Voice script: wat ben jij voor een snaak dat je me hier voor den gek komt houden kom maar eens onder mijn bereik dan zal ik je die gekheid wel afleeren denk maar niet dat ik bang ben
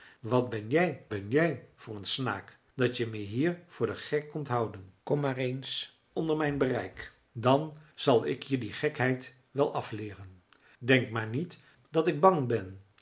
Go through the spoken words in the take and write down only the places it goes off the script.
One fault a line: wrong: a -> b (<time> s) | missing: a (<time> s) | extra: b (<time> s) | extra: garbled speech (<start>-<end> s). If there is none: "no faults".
extra: ben jij (1.1 s)